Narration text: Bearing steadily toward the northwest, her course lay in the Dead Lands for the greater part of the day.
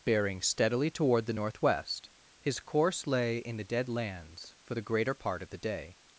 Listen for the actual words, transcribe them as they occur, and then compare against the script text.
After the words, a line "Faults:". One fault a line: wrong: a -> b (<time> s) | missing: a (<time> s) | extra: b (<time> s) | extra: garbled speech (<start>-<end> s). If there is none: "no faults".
Bearing steadily toward the northwest, his course lay in the Dead Lands for the greater part of the day.
Faults:
wrong: her -> his (2.4 s)